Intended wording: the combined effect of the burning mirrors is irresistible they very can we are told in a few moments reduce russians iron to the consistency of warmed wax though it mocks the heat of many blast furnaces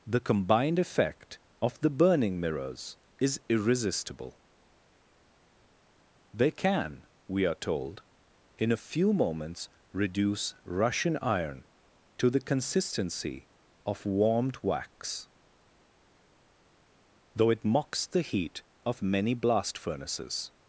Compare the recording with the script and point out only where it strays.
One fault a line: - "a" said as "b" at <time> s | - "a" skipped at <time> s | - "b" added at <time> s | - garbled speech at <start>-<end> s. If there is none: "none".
- "very" skipped at 6.5 s
- "russians" said as "russian" at 10.7 s